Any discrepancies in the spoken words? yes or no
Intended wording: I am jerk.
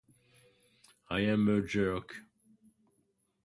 yes